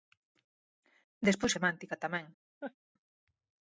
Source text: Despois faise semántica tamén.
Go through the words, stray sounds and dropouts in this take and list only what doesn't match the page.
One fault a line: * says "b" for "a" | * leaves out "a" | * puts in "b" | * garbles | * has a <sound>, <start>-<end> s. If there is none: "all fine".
* leaves out "faise"
* has a laugh, 2.6-2.7 s